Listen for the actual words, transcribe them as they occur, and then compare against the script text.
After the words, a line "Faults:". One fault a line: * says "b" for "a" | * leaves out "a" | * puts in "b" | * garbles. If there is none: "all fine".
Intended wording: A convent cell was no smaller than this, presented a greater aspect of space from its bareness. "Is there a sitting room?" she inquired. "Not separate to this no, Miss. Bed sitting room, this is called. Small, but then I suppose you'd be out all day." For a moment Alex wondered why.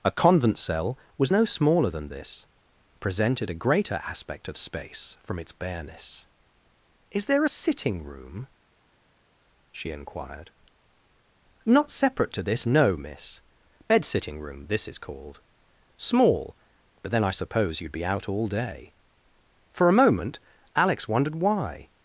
A convent cell was no smaller than this, presented a greater aspect of space from its bareness. "Is there a sitting room?" she inquired. "Not separate to this no, Miss. Bed sitting room, this is called. Small, but then I suppose you'd be out all day." For a moment Alex wondered why.
Faults:
all fine